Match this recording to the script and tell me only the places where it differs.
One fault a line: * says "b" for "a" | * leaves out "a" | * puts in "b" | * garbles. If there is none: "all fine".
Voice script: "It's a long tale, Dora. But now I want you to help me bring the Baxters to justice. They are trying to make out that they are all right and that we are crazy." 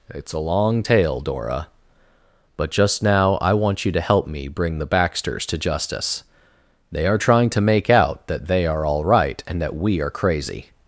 * puts in "just"